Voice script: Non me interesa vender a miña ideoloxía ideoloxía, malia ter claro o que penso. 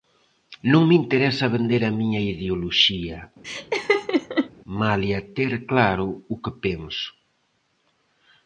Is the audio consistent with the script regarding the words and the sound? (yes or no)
no